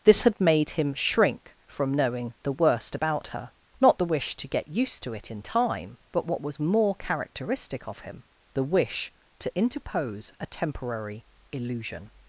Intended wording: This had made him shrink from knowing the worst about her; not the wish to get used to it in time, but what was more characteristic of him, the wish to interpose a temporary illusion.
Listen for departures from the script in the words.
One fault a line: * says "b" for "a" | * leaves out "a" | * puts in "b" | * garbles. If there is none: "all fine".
all fine